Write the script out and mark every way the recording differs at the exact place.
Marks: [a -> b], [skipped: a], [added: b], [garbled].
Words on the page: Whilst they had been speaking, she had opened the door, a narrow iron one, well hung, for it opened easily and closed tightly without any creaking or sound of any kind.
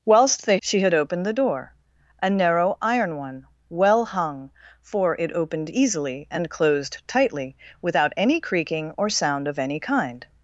Whilst they [skipped: had been speaking,] she had opened the door, a narrow iron one, well hung, for it opened easily and closed tightly without any creaking or sound of any kind.